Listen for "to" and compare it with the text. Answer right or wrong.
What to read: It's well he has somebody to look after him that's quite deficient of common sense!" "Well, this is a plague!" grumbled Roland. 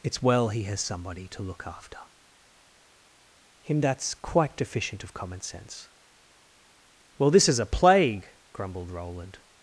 right